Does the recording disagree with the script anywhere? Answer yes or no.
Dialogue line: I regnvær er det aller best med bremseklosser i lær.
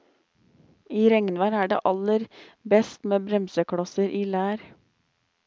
no